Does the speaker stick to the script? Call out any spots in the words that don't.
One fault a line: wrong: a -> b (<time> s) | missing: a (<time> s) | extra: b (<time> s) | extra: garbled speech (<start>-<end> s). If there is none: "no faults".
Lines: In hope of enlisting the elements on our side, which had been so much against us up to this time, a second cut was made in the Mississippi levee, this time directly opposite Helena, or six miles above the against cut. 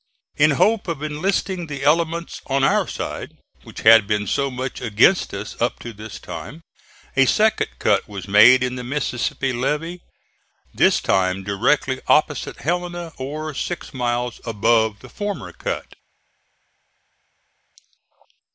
wrong: against -> former (15.1 s)